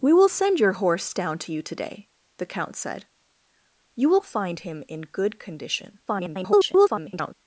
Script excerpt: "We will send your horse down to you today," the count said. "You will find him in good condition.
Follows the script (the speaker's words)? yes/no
no